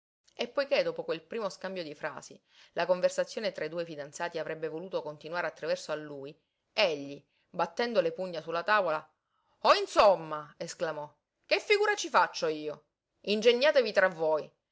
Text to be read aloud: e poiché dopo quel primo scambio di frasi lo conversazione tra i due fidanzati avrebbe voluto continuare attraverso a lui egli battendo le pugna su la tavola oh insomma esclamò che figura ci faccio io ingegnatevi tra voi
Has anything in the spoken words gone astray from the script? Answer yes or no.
yes